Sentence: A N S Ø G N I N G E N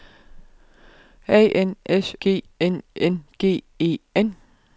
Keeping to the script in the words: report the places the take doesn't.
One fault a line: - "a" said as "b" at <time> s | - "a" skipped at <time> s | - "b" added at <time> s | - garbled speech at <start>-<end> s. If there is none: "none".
- "Ø" skipped at 2.1 s
- "I" skipped at 2.8 s